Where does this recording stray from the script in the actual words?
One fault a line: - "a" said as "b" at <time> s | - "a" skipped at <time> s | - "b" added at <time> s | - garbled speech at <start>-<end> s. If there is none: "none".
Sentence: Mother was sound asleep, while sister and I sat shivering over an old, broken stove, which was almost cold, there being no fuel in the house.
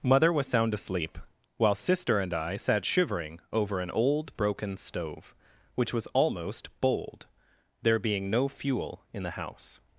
- "cold" said as "bold" at 6.8 s